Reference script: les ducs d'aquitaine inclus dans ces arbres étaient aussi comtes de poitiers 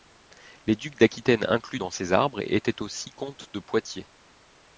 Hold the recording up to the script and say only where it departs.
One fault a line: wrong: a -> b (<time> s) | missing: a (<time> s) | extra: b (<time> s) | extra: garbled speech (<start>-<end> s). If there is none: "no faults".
no faults